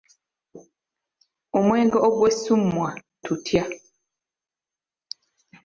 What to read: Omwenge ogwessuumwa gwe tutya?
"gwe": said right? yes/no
no